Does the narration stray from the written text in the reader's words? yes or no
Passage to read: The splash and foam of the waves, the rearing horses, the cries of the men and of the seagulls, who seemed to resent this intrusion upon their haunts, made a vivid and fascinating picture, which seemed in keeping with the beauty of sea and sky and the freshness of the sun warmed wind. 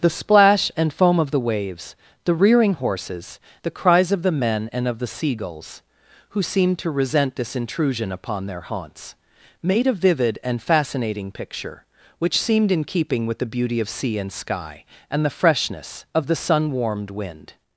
no